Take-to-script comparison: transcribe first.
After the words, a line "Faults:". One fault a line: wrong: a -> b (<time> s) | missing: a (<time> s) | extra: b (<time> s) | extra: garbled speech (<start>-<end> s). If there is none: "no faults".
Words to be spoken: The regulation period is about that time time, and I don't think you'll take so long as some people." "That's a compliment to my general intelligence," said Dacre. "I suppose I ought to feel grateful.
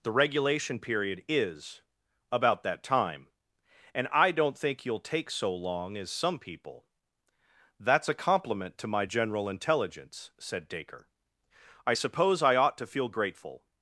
The regulation period is about that time, and I don't think you'll take so long as some people." "That's a compliment to my general intelligence," said Dacre. "I suppose I ought to feel grateful.
Faults:
missing: time (3.3 s)